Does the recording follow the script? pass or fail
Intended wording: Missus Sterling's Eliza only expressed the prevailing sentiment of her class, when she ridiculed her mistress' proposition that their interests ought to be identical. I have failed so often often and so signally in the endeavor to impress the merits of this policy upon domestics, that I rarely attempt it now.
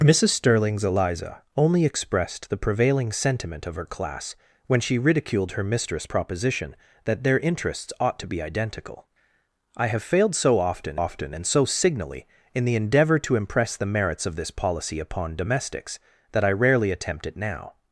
pass